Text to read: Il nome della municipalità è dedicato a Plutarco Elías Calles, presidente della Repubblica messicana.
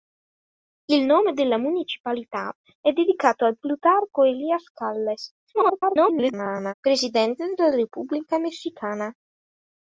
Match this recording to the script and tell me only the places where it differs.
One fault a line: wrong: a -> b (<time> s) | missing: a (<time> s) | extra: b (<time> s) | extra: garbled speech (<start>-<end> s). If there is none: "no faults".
extra: garbled speech (5.5-6.7 s)